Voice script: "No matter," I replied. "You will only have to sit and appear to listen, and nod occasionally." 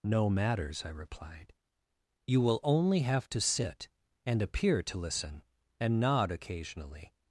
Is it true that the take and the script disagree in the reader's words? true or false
true